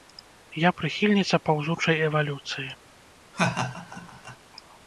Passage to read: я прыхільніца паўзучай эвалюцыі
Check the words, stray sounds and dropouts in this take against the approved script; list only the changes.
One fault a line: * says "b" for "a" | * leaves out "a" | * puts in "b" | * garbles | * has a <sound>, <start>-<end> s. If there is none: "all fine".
* has a laugh, 3.3-4.4 s